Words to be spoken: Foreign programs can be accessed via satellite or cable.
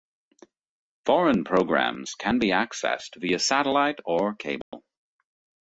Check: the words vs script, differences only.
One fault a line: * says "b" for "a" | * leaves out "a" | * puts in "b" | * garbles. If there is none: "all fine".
all fine